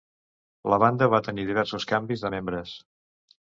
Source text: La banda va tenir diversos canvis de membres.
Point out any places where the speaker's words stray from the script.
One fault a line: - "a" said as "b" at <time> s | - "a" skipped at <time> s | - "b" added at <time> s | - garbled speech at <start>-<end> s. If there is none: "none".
none